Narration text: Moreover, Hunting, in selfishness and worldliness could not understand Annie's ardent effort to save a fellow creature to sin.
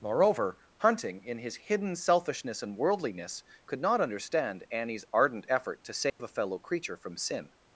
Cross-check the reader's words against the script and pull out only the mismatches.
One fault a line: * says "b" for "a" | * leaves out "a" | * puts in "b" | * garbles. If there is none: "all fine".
* puts in "his hidden"
* says "from" for "to"